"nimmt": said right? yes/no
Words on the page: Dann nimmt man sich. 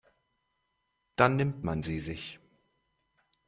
yes